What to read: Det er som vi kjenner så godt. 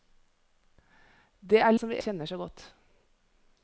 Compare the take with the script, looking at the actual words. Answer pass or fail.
pass